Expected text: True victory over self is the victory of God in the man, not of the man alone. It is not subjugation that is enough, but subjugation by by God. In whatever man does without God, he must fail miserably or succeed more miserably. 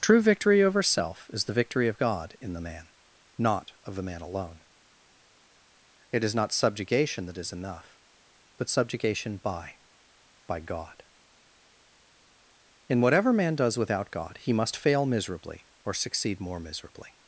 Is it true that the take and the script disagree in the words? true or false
false